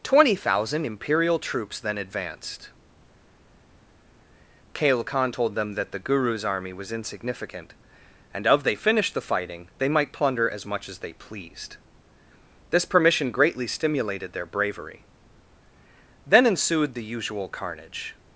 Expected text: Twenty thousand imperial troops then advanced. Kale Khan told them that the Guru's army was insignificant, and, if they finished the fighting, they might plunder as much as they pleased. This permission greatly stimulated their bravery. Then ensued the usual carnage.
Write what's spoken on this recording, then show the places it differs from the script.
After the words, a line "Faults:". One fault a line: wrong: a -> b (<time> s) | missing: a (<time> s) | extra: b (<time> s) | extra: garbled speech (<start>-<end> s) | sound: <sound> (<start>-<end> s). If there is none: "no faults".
Twenty thousand imperial troops then advanced. Kale Khan told them that the Guru's army was insignificant, and, of they finished the fighting, they might plunder as much as they pleased. This permission greatly stimulated their bravery. Then ensued the usual carnage.
Faults:
wrong: if -> of (8.5 s)